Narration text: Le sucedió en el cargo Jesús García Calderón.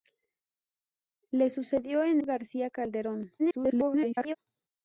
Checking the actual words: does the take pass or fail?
fail